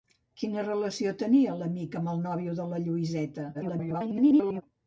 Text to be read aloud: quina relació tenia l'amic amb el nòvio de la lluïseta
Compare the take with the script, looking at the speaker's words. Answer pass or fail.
fail